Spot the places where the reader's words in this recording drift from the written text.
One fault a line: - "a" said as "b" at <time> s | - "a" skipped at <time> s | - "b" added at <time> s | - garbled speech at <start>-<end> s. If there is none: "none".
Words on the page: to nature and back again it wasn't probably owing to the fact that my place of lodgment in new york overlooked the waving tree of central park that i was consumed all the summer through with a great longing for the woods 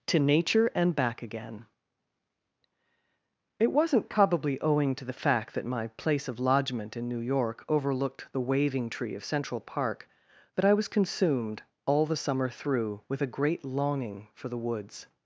none